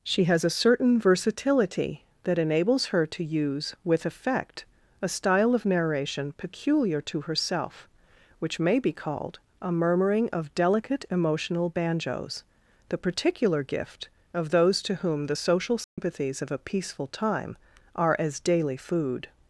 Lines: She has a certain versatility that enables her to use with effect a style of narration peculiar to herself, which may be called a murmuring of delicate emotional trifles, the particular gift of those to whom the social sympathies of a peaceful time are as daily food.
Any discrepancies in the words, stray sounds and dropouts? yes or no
yes